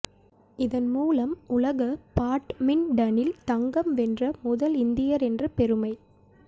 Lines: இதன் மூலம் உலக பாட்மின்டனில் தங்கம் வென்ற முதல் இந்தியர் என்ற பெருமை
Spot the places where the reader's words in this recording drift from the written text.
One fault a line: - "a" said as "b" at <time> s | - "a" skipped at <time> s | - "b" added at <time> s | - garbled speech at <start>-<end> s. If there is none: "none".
none